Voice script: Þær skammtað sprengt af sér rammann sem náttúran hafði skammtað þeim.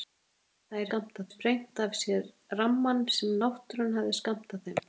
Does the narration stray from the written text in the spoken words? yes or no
no